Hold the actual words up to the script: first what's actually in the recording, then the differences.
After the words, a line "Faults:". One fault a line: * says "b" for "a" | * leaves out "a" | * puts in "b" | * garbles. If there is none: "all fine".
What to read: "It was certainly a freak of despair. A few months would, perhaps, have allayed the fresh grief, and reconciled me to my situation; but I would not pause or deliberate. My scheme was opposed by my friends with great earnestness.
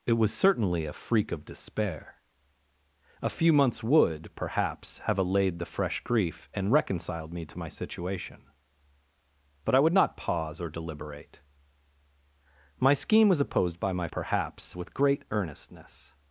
"It was certainly a freak of despair. A few months would, perhaps, have allayed the fresh grief, and reconciled me to my situation; but I would not pause or deliberate. My scheme was opposed by my perhaps with great earnestness.
Faults:
* says "perhaps" for "friends"